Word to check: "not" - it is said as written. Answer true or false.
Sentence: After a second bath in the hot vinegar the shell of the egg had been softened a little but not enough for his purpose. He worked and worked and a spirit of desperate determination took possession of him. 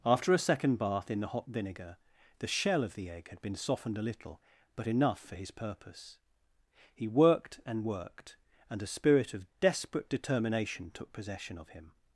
false